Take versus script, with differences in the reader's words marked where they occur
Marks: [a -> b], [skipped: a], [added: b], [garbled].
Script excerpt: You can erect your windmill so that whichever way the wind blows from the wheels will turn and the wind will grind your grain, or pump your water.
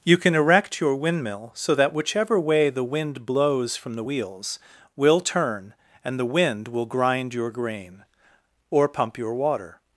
You can erect your windmill so that whichever way the wind blows from the wheels will turn and the wind will grind your grain, or pump your water.